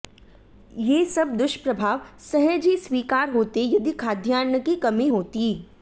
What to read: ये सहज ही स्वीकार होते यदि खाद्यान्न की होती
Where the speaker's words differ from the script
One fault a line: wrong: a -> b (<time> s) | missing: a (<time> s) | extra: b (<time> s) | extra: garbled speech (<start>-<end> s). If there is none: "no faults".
extra: सब दुष्प्रभाव (1.1 s)
extra: कमी (4.8 s)